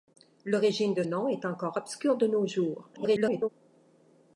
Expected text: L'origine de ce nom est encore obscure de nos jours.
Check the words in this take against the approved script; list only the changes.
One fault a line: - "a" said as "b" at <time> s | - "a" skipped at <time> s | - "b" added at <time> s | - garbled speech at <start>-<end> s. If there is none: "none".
- "ce" skipped at 1.0 s
- garbled speech at 2.9-3.5 s